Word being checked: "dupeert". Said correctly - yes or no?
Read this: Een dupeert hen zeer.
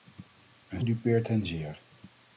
yes